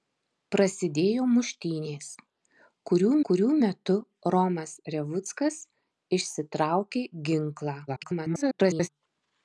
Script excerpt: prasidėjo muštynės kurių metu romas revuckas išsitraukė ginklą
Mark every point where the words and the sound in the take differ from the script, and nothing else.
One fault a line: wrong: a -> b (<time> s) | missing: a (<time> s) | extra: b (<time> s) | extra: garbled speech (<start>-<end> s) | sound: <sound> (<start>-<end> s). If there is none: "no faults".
extra: kurių (3.3 s)
extra: garbled speech (7.9-8.9 s)